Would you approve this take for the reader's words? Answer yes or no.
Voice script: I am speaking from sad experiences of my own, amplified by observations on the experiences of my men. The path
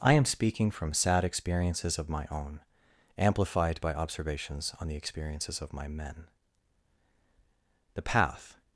yes